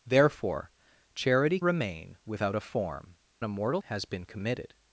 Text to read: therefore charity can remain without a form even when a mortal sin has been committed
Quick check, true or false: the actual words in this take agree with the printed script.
false